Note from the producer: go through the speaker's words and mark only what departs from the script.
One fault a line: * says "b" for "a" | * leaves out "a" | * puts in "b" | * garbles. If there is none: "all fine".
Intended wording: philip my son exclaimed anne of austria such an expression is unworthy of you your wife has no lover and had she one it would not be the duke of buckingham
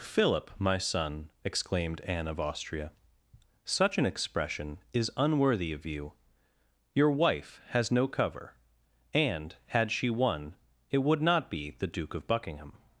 * says "cover" for "lover"